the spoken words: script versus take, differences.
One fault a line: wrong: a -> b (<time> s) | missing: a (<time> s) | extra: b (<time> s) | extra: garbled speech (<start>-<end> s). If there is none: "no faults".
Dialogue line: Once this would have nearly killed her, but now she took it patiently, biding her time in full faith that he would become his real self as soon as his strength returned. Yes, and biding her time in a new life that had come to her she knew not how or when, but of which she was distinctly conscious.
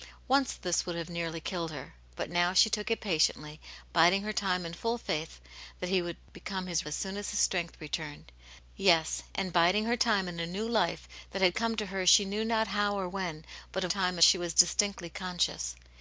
missing: real self (6.9 s)
wrong: which -> time (13.9 s)